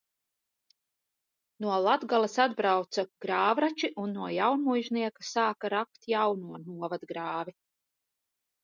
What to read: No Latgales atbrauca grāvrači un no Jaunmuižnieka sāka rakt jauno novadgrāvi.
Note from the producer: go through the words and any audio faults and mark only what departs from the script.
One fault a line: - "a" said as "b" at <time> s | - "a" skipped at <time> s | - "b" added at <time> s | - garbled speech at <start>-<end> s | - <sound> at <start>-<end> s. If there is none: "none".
none